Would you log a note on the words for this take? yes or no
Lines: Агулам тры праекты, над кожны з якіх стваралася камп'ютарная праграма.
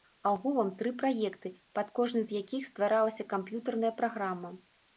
yes